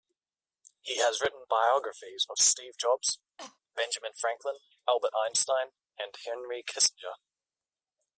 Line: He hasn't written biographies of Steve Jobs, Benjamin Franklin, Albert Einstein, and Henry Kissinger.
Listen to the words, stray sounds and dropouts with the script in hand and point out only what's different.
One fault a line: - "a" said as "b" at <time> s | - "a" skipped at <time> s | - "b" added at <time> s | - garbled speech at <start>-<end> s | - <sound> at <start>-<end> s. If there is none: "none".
- "hasn't" said as "has" at 1.0 s
- cough at 3.4-3.6 s